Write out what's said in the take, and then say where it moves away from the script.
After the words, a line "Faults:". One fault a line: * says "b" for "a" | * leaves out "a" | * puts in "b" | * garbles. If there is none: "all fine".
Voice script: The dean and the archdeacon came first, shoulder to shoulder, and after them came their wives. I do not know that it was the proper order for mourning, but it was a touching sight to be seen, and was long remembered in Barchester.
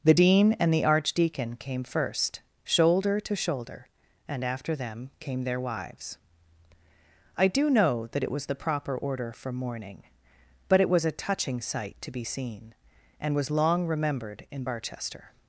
The dean and the archdeacon came first, shoulder to shoulder, and after them came their wives. I do know that it was the proper order for mourning, but it was a touching sight to be seen, and was long remembered in Barchester.
Faults:
* leaves out "not"